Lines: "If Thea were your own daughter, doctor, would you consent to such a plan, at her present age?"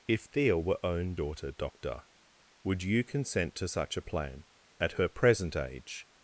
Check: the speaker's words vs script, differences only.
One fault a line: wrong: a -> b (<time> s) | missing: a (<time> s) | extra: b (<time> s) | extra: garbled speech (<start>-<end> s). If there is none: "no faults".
missing: your (0.8 s)